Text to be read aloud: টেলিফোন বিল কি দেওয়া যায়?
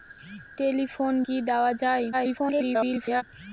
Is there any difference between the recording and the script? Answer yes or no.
yes